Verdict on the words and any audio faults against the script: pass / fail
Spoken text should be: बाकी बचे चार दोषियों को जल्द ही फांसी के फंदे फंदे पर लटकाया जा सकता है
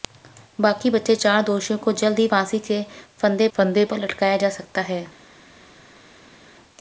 pass